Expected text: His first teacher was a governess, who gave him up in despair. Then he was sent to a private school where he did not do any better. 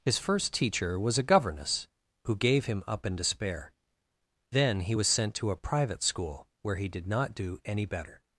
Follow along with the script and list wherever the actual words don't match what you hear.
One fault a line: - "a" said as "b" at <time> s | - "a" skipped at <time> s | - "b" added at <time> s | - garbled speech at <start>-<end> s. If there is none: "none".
none